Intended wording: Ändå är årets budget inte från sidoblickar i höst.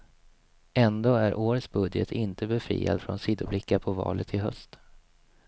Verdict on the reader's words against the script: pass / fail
fail